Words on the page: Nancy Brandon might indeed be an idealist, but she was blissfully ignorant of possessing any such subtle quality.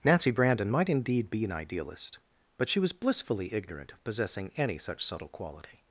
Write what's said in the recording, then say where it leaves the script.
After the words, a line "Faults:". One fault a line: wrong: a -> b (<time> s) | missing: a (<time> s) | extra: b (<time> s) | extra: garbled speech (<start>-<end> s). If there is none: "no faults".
Nancy Brandon might indeed be an idealist, but she was blissfully ignorant of possessing any such subtle quality.
Faults:
no faults